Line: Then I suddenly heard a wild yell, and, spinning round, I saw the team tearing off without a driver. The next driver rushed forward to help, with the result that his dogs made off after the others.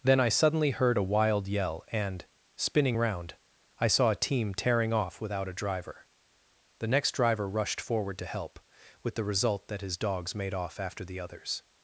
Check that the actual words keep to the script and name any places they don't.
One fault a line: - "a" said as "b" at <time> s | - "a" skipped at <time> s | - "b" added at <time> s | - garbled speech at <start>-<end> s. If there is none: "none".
- "the" said as "a" at 4.1 s